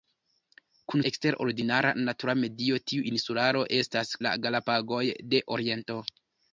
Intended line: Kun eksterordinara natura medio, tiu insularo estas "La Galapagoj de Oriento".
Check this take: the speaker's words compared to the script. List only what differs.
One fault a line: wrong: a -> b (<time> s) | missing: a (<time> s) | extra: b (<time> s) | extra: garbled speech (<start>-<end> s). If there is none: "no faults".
no faults